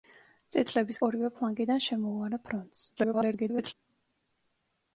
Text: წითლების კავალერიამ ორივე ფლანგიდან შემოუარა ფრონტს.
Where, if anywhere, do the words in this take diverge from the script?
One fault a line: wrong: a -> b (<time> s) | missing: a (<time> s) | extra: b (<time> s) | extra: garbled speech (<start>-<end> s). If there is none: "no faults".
missing: კავალერიამ (1.0 s)
extra: garbled speech (3.0-3.7 s)